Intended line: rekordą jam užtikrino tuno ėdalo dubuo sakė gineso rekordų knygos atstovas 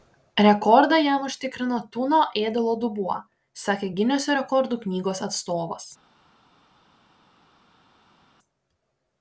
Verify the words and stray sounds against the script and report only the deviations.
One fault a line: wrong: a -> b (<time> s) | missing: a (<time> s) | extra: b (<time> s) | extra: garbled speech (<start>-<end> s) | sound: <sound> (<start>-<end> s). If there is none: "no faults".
no faults